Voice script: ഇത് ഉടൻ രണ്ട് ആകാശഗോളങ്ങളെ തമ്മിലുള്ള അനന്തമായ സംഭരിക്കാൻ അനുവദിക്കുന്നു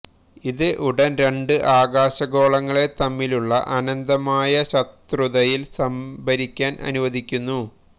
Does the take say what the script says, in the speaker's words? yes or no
no